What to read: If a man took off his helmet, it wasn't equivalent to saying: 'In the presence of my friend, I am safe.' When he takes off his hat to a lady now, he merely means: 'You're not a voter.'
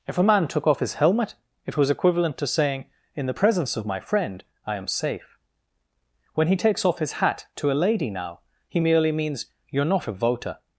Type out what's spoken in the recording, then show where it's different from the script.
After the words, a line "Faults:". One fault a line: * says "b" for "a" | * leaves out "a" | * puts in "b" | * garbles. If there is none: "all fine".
If a man took off his helmet, it was equivalent to saying: 'In the presence of my friend, I am safe.' When he takes off his hat to a lady now, he merely means: 'You're not a voter.'
Faults:
* says "was" for "wasn't"